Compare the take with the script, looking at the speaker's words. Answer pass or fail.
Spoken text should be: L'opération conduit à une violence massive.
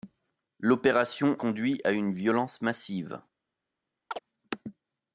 pass